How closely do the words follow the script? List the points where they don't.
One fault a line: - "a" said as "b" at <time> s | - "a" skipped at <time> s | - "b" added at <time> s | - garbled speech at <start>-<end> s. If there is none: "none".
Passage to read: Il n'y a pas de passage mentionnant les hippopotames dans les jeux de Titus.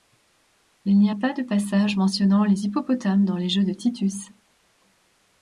none